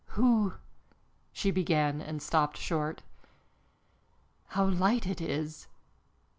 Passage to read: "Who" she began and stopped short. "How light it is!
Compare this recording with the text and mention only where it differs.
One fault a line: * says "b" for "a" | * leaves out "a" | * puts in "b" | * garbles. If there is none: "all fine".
all fine